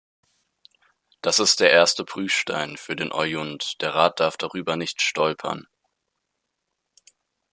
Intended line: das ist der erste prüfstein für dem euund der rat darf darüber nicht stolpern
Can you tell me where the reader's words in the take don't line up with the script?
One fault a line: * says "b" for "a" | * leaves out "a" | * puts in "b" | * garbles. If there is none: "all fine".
* says "den" for "dem"